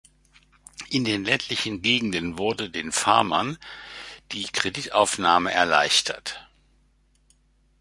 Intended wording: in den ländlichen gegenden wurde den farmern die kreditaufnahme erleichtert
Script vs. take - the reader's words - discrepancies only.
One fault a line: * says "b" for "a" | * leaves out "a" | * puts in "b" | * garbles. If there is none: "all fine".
all fine